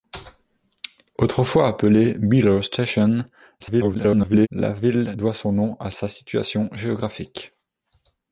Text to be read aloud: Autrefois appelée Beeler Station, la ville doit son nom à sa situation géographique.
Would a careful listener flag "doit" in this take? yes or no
no